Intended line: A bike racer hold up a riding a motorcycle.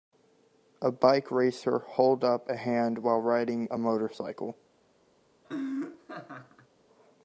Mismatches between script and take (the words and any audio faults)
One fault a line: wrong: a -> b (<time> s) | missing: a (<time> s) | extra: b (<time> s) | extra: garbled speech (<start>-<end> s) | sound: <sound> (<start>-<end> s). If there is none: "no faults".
extra: hand while (2.5 s)
sound: laugh (5.4-6.7 s)